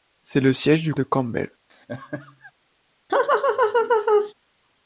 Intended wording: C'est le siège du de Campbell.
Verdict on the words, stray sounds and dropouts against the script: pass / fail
fail